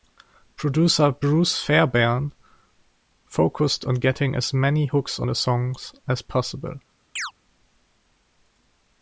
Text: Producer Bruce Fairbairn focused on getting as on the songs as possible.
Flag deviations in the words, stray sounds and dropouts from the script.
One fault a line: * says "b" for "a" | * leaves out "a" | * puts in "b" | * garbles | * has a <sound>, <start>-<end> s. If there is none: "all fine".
* puts in "many hooks"
* has a chirp, 7.2-7.3 s